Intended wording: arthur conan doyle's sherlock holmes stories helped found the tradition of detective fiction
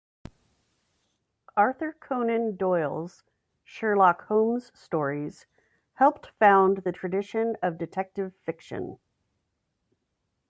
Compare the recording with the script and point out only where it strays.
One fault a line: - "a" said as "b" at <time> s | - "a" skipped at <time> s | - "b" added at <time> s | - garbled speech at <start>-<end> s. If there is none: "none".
none